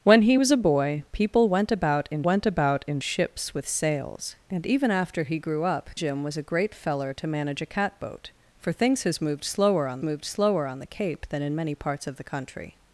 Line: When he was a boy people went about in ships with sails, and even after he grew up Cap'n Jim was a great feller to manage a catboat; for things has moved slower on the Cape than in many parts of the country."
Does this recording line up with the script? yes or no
no